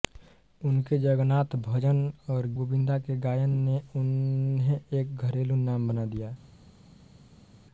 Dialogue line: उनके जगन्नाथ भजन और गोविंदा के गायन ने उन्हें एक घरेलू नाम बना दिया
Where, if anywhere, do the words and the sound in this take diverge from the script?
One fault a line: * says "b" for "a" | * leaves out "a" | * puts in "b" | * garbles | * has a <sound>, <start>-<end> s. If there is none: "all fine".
all fine